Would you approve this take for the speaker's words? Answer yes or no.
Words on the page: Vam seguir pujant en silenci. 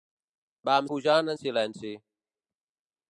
no